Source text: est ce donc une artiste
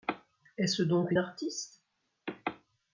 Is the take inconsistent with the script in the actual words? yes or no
no